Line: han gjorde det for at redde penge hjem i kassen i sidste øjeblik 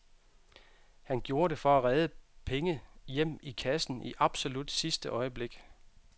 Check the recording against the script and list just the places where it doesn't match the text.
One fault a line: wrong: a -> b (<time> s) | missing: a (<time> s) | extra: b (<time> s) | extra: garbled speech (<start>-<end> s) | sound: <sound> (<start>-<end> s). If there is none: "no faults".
extra: absolut (4.2 s)